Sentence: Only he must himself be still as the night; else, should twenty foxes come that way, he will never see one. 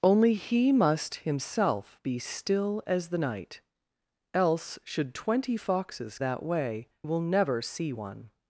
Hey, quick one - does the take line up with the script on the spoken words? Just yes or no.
no